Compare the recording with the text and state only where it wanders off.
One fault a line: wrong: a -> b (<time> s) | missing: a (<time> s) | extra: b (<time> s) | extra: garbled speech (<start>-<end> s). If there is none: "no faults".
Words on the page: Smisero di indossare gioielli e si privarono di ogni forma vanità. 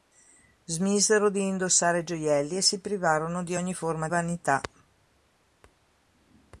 no faults